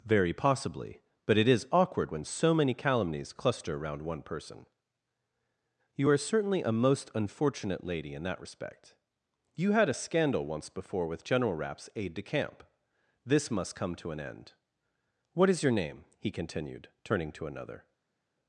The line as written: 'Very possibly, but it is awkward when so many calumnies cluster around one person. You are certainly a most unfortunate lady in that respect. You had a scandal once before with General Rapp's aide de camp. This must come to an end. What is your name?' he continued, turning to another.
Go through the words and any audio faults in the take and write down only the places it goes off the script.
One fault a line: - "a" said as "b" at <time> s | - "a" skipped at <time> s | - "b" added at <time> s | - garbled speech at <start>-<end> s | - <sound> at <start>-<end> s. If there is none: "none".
none